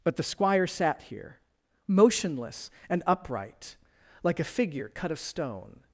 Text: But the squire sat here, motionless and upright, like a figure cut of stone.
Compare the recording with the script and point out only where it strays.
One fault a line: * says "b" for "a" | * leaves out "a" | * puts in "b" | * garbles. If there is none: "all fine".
all fine